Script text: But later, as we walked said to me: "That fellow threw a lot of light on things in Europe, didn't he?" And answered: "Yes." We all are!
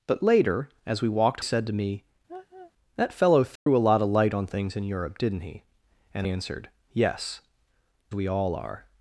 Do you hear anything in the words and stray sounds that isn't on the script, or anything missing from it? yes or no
yes